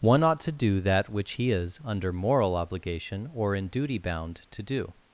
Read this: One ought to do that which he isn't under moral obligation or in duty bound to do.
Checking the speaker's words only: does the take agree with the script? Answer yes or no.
no